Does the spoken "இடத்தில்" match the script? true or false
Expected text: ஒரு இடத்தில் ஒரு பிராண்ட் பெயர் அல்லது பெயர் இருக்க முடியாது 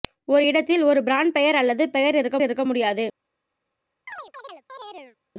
true